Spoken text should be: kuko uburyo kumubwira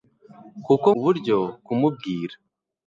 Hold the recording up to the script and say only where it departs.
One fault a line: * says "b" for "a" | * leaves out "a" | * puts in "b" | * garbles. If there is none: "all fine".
all fine